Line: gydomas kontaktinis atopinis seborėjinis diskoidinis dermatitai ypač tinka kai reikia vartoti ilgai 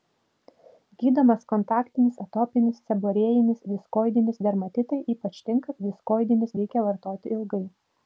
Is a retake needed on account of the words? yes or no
yes